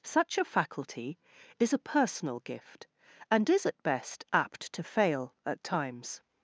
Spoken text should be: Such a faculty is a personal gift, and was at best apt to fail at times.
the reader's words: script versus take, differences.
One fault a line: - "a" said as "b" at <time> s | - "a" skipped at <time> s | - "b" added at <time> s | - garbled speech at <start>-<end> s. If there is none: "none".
- "was" said as "is" at 3.5 s